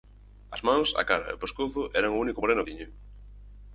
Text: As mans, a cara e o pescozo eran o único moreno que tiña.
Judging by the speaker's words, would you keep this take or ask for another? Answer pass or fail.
fail